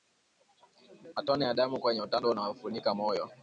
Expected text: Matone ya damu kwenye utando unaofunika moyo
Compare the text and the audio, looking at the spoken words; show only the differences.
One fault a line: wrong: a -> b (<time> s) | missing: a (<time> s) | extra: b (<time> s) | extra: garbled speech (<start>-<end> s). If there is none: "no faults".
no faults